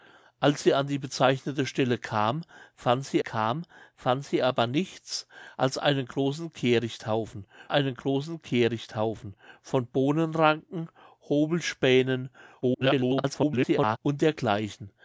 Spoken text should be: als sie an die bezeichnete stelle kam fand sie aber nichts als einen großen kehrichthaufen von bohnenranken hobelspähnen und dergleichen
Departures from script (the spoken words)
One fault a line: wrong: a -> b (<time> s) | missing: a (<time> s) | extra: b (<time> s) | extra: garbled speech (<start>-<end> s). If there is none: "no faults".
extra: kam fand sie (3.2 s)
extra: einen großen kehrichthaufen (7.7 s)
extra: garbled speech (12.6-14.0 s)